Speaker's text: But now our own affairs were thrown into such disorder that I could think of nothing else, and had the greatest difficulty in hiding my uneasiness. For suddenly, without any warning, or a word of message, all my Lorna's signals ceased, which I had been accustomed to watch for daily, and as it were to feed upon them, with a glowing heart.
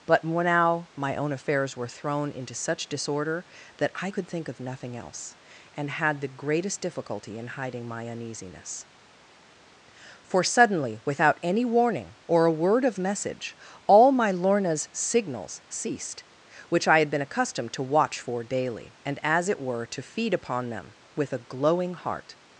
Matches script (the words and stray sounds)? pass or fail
fail